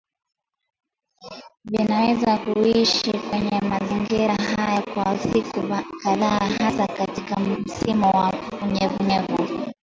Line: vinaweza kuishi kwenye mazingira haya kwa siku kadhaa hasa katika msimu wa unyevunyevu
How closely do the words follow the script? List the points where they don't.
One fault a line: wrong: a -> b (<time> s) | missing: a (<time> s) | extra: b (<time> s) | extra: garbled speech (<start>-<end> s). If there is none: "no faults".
no faults